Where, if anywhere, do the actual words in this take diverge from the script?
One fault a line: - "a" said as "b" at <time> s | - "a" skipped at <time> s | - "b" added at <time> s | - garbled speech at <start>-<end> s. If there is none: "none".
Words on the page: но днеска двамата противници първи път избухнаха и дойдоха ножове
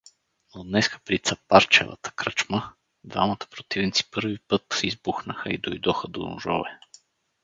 - "при цапарчевата кръчма" added at 1.1 s
- "до" added at 6.1 s